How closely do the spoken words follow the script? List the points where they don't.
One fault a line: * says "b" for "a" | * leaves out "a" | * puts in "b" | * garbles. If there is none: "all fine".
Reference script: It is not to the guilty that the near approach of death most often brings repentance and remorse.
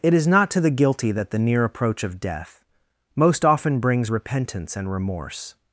all fine